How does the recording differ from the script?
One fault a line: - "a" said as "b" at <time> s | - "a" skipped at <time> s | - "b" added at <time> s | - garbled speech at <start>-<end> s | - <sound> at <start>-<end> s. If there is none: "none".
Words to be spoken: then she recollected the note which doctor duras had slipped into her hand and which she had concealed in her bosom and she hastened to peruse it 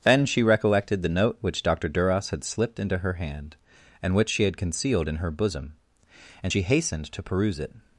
none